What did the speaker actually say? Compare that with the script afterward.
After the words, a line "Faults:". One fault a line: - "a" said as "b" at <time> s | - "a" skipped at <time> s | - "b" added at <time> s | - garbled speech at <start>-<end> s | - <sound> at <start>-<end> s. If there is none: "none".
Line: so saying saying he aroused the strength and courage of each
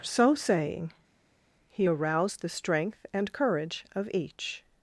so saying he aroused the strength and courage of each
Faults:
- "saying" skipped at 0.9 s